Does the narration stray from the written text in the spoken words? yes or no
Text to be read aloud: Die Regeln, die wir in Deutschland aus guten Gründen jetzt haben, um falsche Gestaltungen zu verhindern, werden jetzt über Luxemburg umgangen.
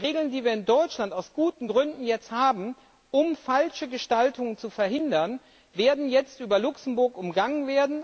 no